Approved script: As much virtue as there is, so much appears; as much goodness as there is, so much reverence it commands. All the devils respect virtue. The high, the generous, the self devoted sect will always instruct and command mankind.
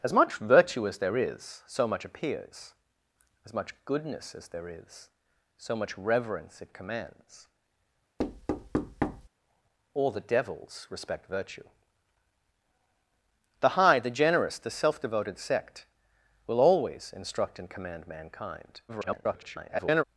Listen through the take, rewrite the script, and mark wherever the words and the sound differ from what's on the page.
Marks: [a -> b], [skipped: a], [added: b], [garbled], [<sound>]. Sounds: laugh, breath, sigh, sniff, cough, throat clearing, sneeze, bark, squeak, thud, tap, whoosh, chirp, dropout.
As much virtue as there is, so much appears; as much goodness as there is, so much reverence it commands. [thud] All the devils respect virtue. The high, the generous, the self devoted sect will always instruct and command mankind. [garbled]